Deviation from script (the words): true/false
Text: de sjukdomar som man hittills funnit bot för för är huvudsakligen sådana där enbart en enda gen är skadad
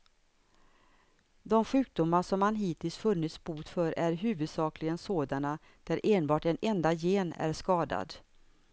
true